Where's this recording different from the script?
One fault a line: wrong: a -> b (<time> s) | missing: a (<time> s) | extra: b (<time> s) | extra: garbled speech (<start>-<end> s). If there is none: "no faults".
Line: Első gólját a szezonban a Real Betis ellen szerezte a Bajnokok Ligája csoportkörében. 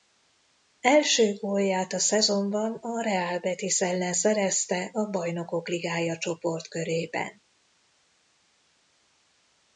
no faults